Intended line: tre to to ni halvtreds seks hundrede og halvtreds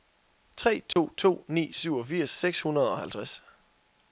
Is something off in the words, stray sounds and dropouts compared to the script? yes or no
yes